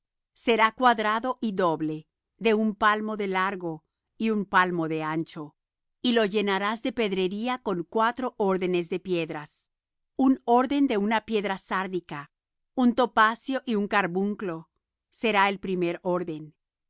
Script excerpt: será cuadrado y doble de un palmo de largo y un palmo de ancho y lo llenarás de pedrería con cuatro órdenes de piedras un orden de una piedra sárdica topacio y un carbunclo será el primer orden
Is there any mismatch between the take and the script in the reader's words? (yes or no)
yes